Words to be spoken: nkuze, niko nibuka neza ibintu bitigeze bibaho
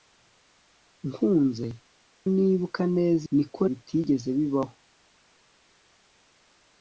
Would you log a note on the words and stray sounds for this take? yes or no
yes